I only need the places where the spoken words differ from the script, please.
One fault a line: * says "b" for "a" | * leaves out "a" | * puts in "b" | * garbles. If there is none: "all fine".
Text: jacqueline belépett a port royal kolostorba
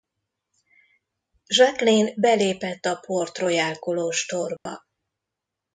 all fine